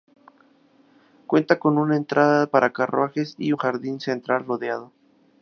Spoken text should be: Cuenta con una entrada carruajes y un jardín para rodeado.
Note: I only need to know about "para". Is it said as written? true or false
false